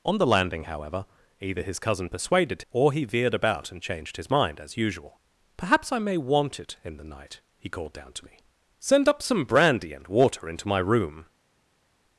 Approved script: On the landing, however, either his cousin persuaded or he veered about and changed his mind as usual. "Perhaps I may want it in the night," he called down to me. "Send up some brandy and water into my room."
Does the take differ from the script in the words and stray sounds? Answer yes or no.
no